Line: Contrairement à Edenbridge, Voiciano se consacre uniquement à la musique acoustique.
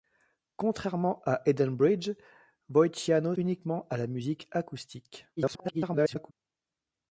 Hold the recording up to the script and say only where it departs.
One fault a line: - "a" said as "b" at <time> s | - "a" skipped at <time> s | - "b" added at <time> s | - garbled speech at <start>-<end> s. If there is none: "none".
- "se consacre" skipped at 3.4 s
- garbled speech at 5.4-6.3 s